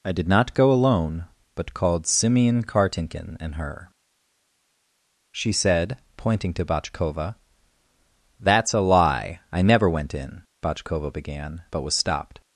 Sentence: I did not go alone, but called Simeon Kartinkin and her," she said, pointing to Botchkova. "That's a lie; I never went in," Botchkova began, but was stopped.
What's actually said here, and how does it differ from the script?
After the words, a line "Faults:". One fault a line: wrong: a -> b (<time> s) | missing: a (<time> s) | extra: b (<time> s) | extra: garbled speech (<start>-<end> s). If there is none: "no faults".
I did not go alone, but called Simeon Kartinkin and her," she said, pointing to Botchkova. "That's a lie; I never went in," Botchkova began, but was stopped.
Faults:
no faults